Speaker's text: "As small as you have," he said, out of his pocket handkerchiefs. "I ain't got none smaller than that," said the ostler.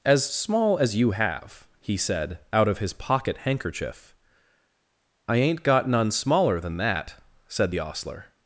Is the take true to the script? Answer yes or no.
no